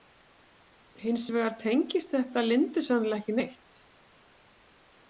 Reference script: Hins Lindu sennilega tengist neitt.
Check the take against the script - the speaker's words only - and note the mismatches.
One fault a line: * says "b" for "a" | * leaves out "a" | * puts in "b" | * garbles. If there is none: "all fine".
* puts in "vegar tengist þetta"
* says "ekki" for "tengist"